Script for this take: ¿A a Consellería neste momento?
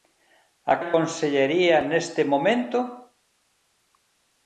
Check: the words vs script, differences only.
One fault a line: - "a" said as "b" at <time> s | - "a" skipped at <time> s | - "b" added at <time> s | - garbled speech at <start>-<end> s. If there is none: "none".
none